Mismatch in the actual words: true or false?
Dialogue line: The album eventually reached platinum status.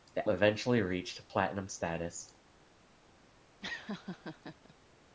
true